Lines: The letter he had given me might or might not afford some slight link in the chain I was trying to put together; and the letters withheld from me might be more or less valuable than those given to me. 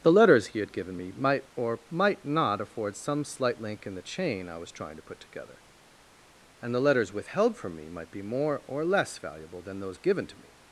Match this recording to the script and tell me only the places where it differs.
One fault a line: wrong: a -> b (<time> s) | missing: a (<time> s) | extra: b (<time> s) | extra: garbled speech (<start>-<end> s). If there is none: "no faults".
wrong: letter -> letters (0.1 s)